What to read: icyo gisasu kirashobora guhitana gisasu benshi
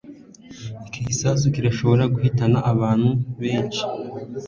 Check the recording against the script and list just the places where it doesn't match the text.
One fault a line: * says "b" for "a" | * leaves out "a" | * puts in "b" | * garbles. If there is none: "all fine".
* says "iki" for "icyo"
* says "abantu" for "gisasu"